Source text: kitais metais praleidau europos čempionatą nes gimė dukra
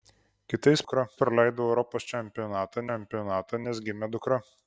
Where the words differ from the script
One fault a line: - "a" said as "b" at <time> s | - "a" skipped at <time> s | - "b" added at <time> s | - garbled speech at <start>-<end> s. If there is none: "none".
- "metais" said as "dukra" at 0.8 s
- "čempionatą" added at 2.9 s